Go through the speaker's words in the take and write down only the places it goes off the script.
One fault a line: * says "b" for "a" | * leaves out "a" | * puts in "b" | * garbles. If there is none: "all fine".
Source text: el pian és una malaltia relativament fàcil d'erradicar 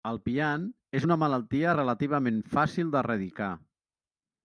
all fine